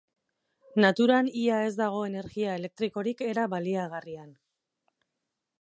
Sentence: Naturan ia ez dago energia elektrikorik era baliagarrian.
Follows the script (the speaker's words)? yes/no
yes